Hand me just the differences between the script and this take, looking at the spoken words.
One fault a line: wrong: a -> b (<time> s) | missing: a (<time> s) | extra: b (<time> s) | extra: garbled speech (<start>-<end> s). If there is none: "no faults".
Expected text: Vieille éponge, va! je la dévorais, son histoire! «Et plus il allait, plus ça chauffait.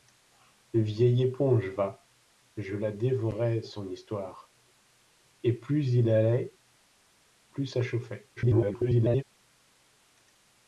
extra: garbled speech (8.4-9.2 s)